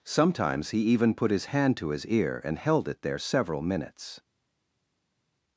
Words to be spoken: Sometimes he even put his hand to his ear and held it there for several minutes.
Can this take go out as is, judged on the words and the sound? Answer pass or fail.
fail